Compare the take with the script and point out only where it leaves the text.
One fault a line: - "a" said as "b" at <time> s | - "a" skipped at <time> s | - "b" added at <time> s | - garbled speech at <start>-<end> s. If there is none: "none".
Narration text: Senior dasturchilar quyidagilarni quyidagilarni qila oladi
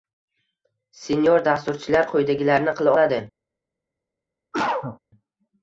- "quyidagilarni" skipped at 2.8 s